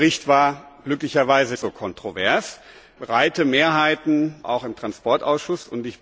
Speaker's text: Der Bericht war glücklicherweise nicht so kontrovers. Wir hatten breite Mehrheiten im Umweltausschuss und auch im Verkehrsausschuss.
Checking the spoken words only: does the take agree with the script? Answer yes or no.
no